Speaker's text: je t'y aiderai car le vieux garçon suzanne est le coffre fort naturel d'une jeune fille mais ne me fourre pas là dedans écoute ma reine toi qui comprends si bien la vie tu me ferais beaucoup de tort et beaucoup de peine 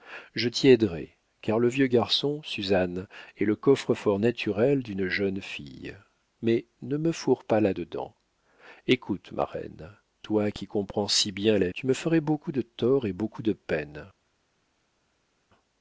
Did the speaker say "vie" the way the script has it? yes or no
no